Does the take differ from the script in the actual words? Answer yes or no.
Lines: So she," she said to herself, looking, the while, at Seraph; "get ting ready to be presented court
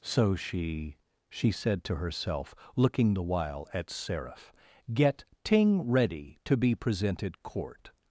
no